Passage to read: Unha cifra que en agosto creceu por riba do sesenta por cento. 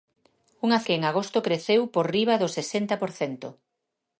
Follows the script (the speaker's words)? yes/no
no